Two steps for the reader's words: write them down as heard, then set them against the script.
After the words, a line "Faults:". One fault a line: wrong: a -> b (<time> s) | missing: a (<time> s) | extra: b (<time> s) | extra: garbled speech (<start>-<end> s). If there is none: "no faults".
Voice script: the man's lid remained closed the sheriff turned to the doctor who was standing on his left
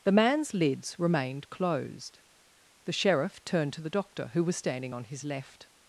the man's lids remained closed the sheriff turned to the doctor who was standing on his left
Faults:
wrong: lid -> lids (0.5 s)